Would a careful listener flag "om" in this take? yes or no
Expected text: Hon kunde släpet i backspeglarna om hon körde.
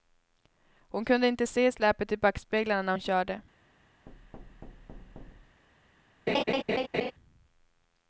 yes